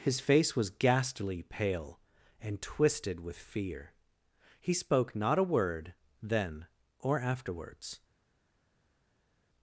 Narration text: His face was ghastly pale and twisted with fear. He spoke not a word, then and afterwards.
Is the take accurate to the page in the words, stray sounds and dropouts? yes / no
no